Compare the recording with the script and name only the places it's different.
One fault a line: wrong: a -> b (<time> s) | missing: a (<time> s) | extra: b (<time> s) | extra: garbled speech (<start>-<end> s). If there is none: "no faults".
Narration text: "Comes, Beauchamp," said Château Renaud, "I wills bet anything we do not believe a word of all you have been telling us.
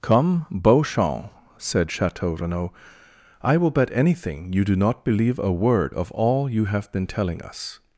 wrong: Comes -> Come (0.0 s)
wrong: wills -> will (3.6 s)
wrong: we -> you (4.5 s)